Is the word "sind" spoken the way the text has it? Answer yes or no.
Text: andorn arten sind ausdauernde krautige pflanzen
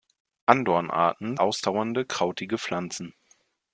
no